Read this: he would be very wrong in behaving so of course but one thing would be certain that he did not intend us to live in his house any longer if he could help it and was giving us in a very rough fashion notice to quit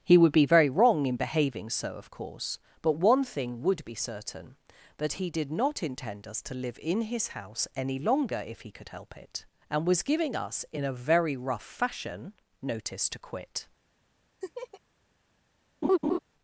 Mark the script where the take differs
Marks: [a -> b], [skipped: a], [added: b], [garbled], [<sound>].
he would be very wrong in behaving so of course but one thing would be certain that he did not intend us to live in his house any longer if he could help it and was giving us in a very rough fashion notice to quit [laugh] [laugh]